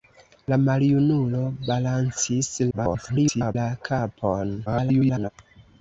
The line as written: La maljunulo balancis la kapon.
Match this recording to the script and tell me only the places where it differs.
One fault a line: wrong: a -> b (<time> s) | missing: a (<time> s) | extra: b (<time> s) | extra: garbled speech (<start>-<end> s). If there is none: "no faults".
extra: garbled speech (2.7-3.6 s)
extra: garbled speech (4.7-5.3 s)